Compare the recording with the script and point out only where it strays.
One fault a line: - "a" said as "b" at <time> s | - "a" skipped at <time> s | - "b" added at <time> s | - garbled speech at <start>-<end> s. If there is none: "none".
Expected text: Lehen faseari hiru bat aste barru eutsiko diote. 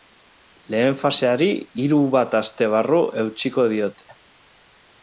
none